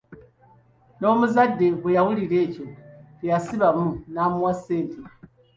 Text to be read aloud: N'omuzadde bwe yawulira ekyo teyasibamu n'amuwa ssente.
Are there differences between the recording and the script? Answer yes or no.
no